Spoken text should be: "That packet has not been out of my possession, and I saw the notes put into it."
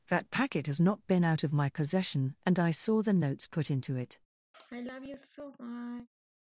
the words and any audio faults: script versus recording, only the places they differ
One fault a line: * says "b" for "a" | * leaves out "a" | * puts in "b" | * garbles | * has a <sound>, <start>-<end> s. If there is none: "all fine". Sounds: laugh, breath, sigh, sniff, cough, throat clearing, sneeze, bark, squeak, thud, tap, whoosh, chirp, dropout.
* has a sigh, 4.5-6.1 s